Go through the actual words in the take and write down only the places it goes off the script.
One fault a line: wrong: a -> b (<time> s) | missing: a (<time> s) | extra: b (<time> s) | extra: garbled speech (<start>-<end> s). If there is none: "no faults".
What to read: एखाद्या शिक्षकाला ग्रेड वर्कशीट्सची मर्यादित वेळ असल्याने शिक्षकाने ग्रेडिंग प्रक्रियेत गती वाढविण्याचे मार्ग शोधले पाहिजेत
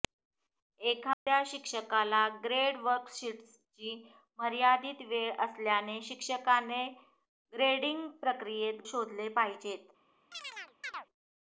missing: गती वाढविण्याचे मार्ग (8.8 s)